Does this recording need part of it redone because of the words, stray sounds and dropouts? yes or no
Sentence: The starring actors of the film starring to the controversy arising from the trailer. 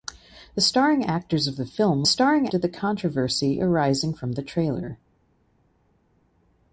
no